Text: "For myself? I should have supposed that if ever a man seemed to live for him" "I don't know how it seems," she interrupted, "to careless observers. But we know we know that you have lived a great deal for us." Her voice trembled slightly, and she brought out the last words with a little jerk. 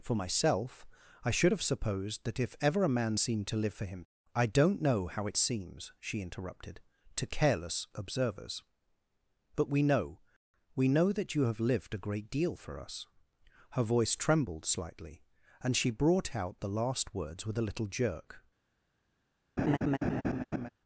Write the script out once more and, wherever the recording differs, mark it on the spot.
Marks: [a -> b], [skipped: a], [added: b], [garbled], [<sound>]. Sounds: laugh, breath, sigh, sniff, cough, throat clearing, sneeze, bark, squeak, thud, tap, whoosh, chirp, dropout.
"For myself? I should have supposed that if ever a man seemed to live for him" "I don't know how it seems," she interrupted, "to careless observers. But we know we know that you have lived a great deal for us." Her voice trembled slightly, and she brought out the last words with a little jerk. [laugh]